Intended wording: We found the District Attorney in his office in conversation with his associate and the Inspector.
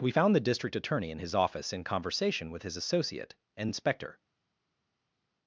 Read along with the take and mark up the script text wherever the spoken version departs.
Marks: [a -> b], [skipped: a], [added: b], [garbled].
We found the District Attorney in his office in conversation with his associate and [skipped: the] Inspector.